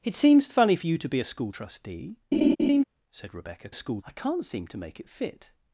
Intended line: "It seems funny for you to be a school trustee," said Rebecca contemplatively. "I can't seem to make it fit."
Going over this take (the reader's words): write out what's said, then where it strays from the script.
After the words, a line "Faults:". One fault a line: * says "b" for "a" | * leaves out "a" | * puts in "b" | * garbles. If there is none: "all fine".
"It seems funny for you to be a school trustee," said Rebecca school. "I can't seem to make it fit."
Faults:
* says "school" for "contemplatively"